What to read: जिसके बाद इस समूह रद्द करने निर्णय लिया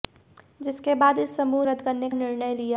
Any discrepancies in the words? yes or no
no